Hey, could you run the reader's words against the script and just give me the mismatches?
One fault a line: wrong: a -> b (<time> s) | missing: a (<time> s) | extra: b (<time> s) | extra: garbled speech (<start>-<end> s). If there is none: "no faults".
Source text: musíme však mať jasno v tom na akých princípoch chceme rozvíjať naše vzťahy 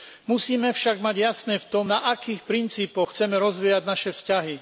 no faults